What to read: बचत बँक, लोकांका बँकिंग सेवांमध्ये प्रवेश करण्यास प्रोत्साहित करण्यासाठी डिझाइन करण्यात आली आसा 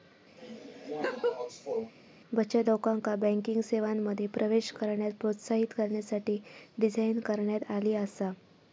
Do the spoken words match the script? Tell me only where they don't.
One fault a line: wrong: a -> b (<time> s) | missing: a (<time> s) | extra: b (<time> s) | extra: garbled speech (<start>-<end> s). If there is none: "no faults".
missing: बँक (2.6 s)